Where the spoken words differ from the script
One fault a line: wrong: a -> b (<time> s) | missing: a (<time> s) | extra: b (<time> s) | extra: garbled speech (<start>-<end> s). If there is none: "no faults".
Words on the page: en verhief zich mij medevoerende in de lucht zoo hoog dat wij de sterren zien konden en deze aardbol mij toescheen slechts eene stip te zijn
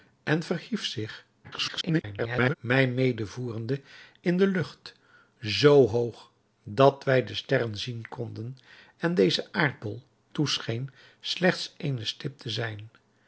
extra: garbled speech (1.4-2.5 s)
missing: mij (10.0 s)